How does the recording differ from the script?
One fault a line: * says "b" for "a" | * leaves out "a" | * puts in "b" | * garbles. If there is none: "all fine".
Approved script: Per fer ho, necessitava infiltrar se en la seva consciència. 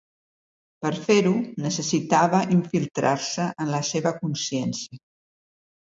all fine